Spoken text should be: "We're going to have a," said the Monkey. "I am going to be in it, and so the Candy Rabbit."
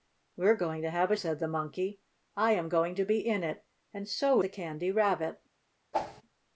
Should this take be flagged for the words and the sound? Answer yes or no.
yes